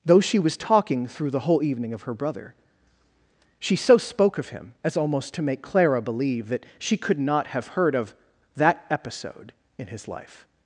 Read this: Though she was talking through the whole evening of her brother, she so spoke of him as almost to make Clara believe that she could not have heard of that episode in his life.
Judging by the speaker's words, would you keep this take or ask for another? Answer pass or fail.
pass